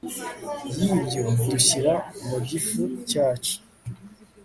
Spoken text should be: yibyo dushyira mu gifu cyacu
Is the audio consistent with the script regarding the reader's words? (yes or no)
yes